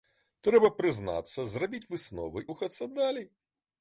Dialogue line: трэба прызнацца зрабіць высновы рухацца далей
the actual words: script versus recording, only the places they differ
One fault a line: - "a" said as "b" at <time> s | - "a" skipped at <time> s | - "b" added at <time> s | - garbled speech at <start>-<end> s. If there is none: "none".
none